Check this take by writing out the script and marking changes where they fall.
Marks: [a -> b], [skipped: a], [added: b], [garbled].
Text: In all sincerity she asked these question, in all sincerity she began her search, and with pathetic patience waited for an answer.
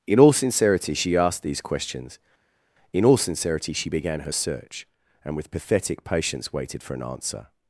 In all sincerity she asked these [question, -> questions] in all sincerity she began her search, and with pathetic patience waited for an answer.